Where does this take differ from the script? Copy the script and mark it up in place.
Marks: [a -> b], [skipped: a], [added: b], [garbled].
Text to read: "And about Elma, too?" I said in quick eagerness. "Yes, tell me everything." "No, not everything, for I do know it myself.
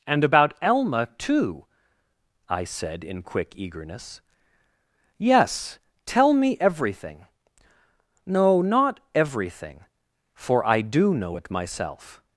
"And about Elma, too?" I said in quick eagerness. "Yes, tell me everything." "No, not everything, for I do know it myself.